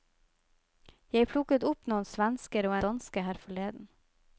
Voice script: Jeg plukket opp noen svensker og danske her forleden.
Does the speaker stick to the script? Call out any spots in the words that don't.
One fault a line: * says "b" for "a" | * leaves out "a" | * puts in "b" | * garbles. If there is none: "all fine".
all fine